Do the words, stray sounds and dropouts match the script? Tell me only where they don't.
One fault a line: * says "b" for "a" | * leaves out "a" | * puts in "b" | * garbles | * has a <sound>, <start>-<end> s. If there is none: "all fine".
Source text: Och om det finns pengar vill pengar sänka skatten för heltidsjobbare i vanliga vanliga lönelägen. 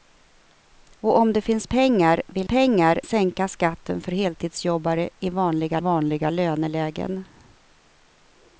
all fine